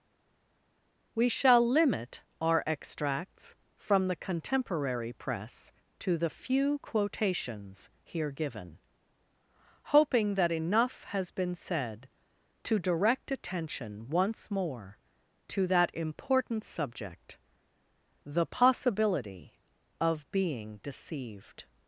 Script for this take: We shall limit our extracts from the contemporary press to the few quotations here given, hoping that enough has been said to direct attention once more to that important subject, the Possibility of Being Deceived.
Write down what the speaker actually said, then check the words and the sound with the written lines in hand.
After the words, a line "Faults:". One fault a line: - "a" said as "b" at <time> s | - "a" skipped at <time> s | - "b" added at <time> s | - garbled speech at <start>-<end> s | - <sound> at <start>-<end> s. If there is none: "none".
We shall limit our extracts from the contemporary press to the few quotations here given, hoping that enough has been said to direct attention once more to that important subject, the Possibility of Being Deceived.
Faults:
none